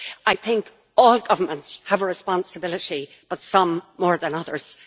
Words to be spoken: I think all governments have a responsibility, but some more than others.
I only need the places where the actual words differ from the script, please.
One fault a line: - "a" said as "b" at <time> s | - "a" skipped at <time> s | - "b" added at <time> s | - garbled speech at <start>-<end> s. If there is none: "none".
none